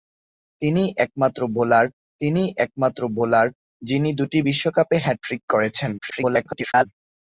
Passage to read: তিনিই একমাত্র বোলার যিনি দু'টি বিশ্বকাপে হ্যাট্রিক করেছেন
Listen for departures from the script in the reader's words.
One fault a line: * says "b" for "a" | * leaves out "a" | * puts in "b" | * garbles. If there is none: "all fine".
* puts in "তিনিই একমাত্র বোলার"
* garbles